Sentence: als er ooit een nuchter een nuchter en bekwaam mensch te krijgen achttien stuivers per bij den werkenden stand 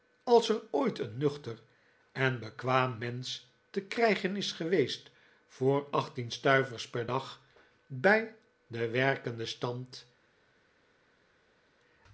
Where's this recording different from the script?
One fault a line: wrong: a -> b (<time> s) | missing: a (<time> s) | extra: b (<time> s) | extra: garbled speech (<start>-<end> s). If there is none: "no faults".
missing: een nuchter (1.6 s)
extra: is geweest voor (4.3 s)
extra: dag (7.0 s)